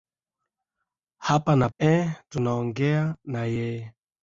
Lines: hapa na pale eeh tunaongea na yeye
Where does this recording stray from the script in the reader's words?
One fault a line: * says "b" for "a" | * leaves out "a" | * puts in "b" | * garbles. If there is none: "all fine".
* leaves out "pale"